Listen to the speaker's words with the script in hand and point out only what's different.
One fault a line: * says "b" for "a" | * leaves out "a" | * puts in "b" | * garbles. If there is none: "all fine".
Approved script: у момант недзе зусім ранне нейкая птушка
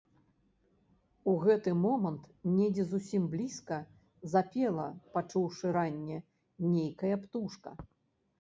* puts in "гэты"
* puts in "блізка запела пачуўшы"